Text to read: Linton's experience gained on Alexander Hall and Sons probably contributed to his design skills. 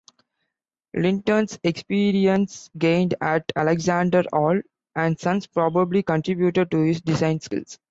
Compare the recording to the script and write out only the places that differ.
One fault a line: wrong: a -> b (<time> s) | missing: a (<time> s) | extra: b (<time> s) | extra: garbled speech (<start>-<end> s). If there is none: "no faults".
wrong: on -> at (3.2 s)